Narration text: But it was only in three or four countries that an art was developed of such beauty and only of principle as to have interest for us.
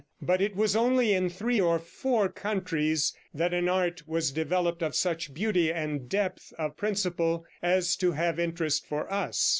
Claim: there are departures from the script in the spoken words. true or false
true